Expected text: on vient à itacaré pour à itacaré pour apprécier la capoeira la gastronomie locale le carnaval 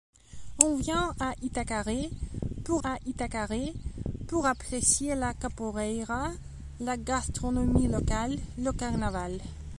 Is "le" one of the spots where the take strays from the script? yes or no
no